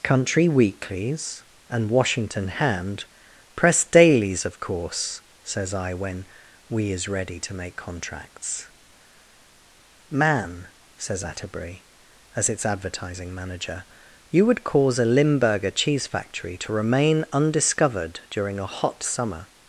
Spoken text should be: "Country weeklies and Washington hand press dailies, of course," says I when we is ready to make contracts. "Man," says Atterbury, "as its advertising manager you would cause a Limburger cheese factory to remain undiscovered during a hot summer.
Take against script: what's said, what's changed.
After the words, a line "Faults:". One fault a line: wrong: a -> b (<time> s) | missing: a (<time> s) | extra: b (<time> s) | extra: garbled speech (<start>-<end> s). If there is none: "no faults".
"Country weeklies and Washington hand press dailies, of course," says I when we is ready to make contracts. "Man," says Atterbury, "as its advertising manager you would cause a Limburger cheese factory to remain undiscovered during a hot summer.
Faults:
no faults